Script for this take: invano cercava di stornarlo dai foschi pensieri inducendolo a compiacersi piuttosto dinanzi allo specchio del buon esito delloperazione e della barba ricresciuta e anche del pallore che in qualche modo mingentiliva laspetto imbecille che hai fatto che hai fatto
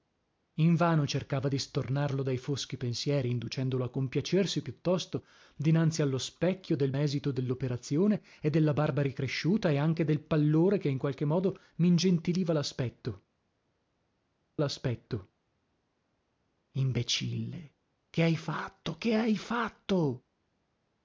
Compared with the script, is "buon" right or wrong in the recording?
wrong